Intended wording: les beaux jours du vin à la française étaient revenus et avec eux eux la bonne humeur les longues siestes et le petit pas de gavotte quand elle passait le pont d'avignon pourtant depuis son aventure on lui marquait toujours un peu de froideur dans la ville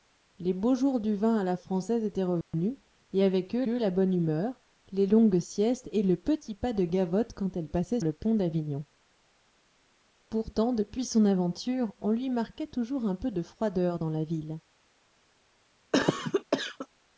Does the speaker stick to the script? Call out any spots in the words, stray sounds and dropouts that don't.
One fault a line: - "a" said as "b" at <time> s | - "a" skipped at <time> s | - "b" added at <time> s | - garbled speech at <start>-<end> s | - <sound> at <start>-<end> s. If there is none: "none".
- dropout at 2.4-2.5 s
- cough at 15.9-16.9 s